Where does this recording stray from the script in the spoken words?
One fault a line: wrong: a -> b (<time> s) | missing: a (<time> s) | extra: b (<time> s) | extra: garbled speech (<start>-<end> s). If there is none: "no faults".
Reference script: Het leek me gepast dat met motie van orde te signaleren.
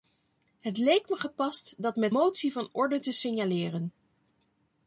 no faults